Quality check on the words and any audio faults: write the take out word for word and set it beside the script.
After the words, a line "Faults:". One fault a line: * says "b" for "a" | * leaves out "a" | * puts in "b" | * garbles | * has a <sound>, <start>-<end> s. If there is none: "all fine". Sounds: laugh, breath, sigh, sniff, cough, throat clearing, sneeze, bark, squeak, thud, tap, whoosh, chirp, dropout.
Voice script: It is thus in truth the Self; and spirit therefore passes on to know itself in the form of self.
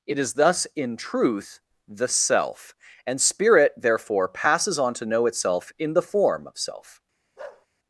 It is thus in truth the Self; and spirit therefore passes on to know itself in the form of self.
Faults:
* has a bark, 7.4-7.7 s